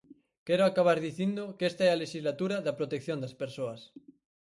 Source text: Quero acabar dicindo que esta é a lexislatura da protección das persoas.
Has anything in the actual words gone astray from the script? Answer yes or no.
no